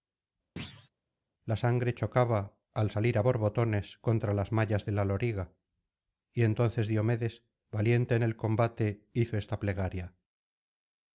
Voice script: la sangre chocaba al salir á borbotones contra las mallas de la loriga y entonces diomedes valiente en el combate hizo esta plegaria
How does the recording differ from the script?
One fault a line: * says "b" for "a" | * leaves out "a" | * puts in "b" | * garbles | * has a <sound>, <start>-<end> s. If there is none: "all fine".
* has a thud, 0.6-0.9 s